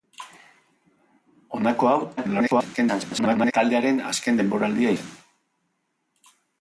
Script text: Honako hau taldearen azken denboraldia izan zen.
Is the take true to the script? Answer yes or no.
no